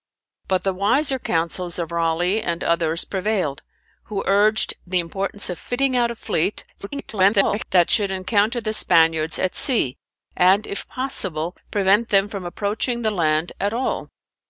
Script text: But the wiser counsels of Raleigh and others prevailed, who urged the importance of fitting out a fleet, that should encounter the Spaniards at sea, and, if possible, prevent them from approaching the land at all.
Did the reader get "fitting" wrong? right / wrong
right